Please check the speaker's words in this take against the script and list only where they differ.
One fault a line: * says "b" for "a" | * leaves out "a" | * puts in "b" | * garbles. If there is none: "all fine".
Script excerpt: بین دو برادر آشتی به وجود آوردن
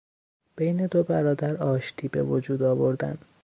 all fine